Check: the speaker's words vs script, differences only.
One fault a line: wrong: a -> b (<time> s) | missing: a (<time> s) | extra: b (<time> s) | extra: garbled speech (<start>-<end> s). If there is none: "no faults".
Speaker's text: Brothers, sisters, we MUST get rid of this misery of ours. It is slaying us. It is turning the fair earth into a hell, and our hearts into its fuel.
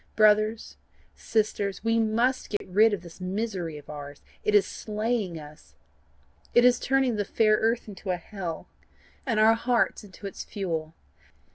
no faults